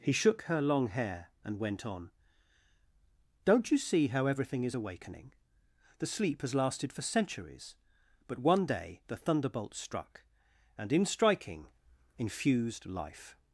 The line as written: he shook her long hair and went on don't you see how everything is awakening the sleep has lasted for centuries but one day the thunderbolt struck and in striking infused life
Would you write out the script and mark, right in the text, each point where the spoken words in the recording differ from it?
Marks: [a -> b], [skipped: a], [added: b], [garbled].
he shook her long hair and went on don't you see how everything is awakening the sleep has lasted for centuries but one day the thunderbolt struck and in striking infused life